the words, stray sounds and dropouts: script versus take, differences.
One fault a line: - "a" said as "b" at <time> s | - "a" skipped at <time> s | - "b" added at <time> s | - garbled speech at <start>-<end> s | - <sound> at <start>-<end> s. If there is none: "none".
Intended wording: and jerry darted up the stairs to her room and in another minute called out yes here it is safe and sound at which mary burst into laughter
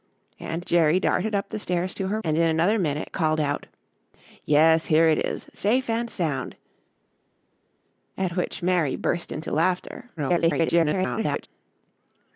- "room" skipped at 2.2 s
- garbled speech at 10.2-11.5 s